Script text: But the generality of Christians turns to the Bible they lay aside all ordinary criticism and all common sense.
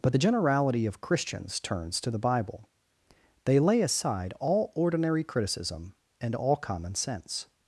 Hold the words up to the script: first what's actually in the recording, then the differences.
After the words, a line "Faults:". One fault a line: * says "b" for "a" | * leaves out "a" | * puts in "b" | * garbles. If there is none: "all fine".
But the generality of Christians turns to the Bible they lay aside all ordinary criticism and all common sense.
Faults:
all fine